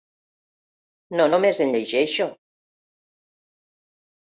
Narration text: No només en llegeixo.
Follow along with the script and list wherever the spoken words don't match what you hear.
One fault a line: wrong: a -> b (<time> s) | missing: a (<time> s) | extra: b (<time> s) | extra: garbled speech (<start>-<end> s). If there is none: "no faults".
no faults